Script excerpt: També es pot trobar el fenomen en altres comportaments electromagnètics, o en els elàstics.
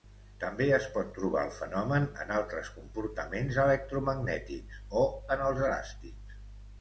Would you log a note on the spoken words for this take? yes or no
no